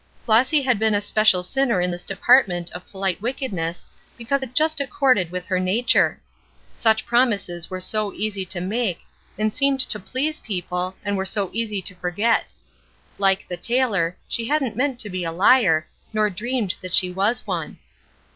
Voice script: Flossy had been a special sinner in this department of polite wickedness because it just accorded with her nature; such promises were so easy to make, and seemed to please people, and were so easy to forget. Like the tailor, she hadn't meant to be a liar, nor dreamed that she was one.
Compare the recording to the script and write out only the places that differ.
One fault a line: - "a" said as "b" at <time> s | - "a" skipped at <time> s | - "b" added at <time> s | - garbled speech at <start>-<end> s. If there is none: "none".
none